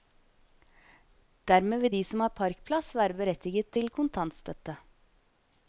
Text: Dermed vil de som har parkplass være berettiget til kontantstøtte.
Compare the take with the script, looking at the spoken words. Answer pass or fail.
pass